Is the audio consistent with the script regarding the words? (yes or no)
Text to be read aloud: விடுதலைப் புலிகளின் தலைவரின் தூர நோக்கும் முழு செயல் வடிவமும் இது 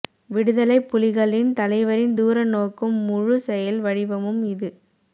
yes